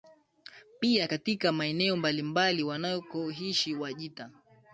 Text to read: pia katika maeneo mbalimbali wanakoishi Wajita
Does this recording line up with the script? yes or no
yes